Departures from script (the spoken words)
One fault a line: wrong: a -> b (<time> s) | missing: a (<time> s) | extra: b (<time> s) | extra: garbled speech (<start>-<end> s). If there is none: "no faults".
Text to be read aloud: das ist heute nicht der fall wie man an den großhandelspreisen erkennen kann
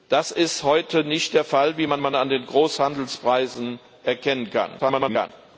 extra: man (2.0 s)
extra: garbled speech (4.8-5.3 s)